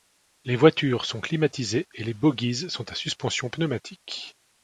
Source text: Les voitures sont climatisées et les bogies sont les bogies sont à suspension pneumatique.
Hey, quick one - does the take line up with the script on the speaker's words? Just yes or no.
no